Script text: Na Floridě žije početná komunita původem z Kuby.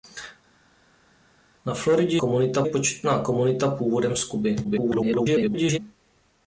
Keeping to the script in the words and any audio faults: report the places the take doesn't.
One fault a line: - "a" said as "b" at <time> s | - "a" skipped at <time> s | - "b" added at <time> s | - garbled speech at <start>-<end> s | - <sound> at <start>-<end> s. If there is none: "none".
- "žije" said as "komunita" at 2.2 s
- garbled speech at 4.6-5.8 s